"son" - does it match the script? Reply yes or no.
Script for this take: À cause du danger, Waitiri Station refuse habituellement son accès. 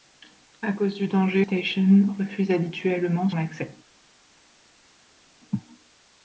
no